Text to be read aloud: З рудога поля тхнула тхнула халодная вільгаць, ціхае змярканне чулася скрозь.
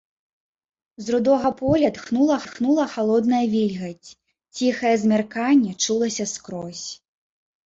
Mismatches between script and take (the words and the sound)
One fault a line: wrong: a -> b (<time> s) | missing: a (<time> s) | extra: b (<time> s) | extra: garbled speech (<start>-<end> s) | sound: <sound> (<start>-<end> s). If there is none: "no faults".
no faults